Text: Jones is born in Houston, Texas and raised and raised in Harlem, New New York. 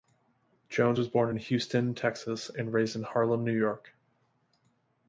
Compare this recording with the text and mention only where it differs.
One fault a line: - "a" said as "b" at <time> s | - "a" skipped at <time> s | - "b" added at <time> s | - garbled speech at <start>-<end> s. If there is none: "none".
- "is" said as "was" at 0.9 s
- "and raised" skipped at 3.0 s
- "New" skipped at 3.6 s